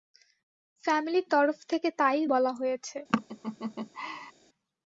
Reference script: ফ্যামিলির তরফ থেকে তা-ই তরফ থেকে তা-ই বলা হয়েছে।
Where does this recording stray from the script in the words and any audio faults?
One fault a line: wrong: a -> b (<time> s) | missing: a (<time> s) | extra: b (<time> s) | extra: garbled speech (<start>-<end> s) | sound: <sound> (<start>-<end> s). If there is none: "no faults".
missing: তরফ থেকে তা-ই (2.2 s)
sound: laugh (3.1-4.3 s)